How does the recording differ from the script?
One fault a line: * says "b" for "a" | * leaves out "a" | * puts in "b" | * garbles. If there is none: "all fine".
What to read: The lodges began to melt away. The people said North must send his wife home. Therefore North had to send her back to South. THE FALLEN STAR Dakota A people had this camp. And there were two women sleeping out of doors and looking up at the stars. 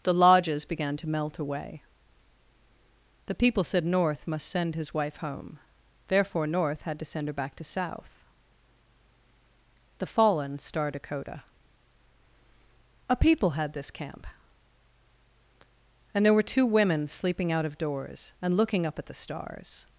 all fine